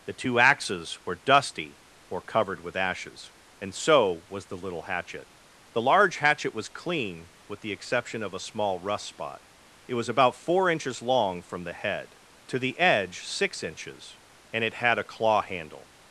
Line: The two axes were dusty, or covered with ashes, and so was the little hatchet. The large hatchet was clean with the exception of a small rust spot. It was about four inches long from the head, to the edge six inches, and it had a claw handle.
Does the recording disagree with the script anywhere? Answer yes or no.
no